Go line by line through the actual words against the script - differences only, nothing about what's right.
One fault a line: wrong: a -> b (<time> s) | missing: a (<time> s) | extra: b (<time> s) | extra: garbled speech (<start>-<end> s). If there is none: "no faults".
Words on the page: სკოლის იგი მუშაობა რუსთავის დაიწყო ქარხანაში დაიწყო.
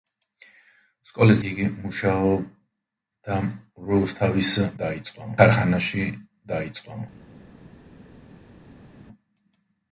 no faults